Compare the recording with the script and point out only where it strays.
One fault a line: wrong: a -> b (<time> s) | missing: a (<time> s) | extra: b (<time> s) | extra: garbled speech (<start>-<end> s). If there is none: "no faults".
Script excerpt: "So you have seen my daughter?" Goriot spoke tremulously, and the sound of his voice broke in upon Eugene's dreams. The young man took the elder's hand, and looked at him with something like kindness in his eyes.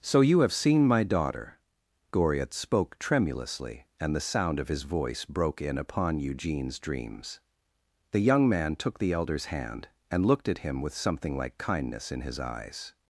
no faults